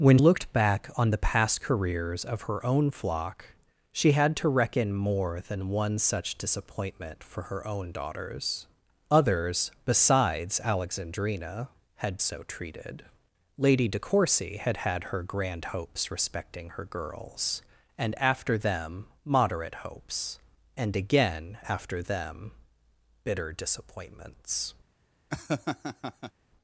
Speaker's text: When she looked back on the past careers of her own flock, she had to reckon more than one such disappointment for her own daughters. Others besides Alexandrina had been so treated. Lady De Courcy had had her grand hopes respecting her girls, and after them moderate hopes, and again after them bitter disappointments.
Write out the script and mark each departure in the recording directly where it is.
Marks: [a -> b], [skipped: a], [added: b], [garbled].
When [skipped: she] looked back on the past careers of her own flock, she had to reckon more than one such disappointment for her own daughters. Others besides Alexandrina had [skipped: been] so treated. Lady De Courcy had had her grand hopes respecting her girls, and after them moderate hopes, and again after them bitter disappointments.